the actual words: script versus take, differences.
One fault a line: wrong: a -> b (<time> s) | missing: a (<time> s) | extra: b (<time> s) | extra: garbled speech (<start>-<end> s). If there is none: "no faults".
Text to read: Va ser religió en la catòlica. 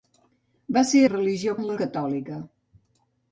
no faults